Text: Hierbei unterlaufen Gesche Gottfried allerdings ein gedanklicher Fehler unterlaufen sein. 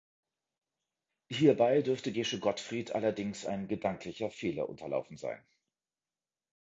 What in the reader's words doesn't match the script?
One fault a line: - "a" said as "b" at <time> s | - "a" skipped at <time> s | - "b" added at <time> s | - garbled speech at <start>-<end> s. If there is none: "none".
- "unterlaufen" said as "dürfte" at 1.8 s